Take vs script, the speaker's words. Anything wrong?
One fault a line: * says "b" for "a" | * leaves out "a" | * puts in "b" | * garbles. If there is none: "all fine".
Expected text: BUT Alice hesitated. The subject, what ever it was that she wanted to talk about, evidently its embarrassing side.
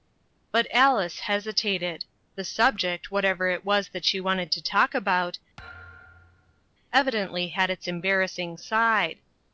* puts in "had"